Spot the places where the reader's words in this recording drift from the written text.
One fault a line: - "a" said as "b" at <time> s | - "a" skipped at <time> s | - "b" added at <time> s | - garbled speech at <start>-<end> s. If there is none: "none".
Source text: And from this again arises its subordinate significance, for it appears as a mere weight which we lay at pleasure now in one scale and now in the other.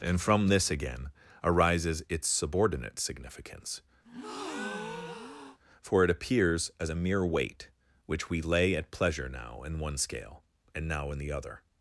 none